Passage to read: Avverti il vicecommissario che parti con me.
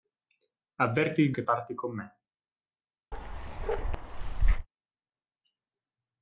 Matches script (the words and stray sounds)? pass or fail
fail